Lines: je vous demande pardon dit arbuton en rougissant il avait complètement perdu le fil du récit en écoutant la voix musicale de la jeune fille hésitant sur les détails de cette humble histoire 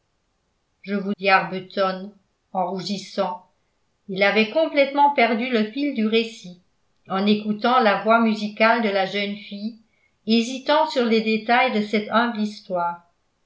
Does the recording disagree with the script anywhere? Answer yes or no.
yes